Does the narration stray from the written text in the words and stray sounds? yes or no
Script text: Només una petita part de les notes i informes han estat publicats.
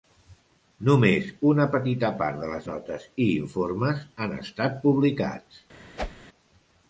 yes